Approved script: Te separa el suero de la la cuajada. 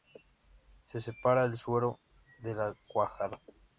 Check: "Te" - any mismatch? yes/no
yes